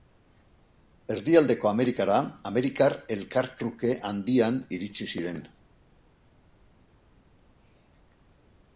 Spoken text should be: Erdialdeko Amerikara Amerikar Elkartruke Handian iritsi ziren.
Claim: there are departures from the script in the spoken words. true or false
false